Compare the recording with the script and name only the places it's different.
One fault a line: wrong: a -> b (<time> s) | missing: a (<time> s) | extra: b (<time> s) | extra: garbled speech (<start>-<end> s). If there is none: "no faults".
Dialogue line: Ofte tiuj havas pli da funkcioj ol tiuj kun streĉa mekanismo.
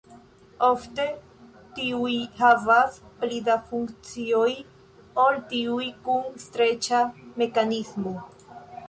no faults